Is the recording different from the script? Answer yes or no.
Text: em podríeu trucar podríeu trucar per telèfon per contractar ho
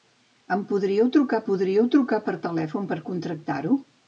no